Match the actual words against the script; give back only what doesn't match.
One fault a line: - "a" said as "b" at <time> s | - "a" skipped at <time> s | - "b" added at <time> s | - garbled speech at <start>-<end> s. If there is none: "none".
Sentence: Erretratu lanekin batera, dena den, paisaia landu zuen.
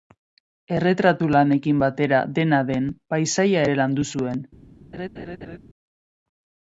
- "ere" added at 3.6 s